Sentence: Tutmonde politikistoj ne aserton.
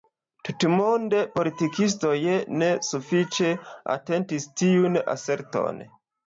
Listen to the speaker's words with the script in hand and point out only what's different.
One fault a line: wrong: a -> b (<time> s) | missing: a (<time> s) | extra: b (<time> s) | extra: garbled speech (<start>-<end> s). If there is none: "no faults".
extra: sufiĉe atentis tiun (2.9 s)